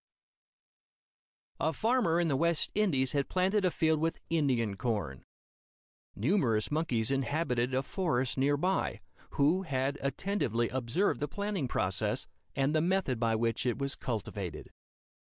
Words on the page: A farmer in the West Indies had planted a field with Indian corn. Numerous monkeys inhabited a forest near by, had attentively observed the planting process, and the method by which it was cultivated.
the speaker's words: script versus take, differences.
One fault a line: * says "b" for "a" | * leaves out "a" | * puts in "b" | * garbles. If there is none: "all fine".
* puts in "who"